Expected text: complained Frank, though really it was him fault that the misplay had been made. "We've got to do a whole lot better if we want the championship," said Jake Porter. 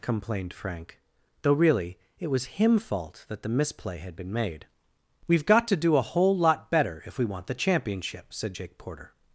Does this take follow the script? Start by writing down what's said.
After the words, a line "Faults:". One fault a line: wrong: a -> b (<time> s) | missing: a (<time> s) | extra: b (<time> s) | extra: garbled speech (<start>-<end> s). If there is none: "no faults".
complained Frank, though really it was him fault that the misplay had been made. "We've got to do a whole lot better if we want the championship," said Jake Porter.
Faults:
no faults